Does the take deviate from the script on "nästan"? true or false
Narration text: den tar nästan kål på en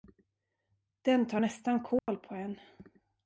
false